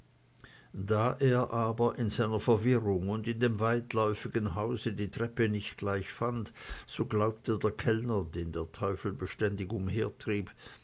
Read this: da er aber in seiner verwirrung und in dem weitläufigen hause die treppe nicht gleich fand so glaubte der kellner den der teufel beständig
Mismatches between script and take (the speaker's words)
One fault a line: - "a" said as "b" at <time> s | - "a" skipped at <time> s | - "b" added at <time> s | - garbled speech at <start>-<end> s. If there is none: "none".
none